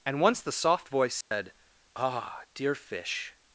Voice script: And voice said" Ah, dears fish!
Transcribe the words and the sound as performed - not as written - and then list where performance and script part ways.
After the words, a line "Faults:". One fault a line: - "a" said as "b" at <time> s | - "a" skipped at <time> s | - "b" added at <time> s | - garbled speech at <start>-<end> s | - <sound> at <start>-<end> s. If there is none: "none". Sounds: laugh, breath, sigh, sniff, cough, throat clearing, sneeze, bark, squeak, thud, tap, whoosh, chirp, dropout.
And once the soft voice said" Ah, dear fish!
Faults:
- "once the soft" added at 0.2 s
- dropout at 1.2-1.3 s
- "dears" said as "dear" at 2.5 s